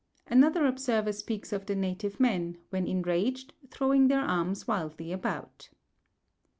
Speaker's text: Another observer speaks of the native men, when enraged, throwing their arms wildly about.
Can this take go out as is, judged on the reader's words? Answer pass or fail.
pass